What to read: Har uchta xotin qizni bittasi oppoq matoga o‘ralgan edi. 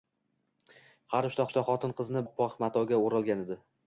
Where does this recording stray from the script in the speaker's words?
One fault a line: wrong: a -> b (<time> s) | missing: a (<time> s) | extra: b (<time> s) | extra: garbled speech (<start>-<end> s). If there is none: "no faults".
extra: uchta (1.5 s)
missing: bittasi (2.2 s)